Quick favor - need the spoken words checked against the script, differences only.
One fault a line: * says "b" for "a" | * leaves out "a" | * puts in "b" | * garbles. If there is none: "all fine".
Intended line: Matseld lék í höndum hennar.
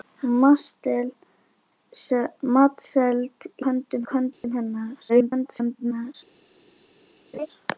* says "höndum" for "lék"
* garbles